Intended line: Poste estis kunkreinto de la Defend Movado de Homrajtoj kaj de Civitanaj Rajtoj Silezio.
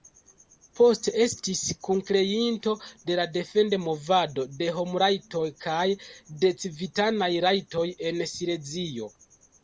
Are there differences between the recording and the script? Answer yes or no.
yes